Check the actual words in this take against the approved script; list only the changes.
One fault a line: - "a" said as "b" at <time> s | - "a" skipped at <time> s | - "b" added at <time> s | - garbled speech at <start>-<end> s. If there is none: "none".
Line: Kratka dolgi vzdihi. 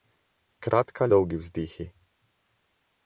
none